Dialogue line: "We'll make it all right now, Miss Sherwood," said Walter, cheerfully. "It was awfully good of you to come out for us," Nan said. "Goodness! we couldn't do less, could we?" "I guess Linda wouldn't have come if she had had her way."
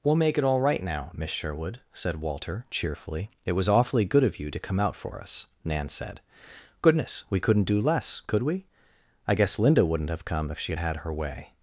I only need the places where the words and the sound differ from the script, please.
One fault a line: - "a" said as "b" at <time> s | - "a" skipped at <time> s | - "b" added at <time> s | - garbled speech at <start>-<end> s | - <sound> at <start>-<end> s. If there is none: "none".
none